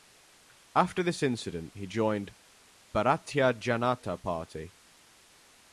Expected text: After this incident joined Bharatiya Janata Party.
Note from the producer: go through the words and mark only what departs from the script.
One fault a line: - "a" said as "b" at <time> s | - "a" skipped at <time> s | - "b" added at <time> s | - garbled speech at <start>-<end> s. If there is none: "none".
- "he" added at 1.8 s